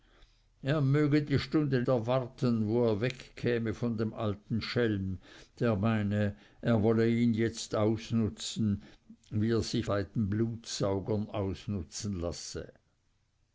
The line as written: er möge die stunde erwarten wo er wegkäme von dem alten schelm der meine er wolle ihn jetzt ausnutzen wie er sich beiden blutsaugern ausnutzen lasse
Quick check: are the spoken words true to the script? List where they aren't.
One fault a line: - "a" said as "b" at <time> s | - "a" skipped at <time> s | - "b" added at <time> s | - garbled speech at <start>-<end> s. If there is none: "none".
none